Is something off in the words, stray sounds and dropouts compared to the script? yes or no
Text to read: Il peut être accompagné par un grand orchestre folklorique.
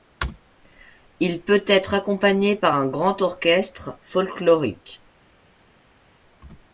no